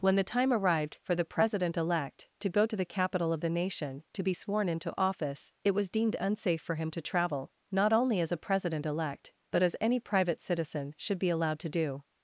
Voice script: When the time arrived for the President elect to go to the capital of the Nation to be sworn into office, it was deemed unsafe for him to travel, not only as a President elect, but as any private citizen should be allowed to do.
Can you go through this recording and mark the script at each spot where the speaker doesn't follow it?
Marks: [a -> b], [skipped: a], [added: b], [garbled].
When the time arrived for the President elect to go to the capital of the Nation to be sworn into office, it was deemed unsafe for him to travel, not only as a President elect, but as any private citizen should be allowed to do.